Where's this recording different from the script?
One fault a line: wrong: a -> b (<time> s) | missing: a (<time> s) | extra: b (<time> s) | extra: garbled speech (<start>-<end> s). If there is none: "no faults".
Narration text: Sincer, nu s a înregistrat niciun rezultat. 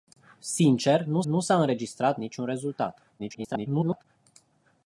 extra: nu (1.2 s)
extra: garbled speech (3.2-4.0 s)